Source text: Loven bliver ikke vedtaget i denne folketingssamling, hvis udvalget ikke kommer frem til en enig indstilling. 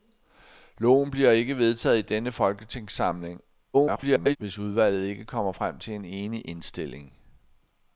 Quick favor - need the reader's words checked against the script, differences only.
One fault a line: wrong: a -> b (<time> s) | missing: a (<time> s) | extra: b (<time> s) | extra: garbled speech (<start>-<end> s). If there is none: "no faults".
extra: garbled speech (3.7-4.4 s)